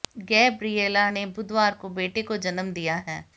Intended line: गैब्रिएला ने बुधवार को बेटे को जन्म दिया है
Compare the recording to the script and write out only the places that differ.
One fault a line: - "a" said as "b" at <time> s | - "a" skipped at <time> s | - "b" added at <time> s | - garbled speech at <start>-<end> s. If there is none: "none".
none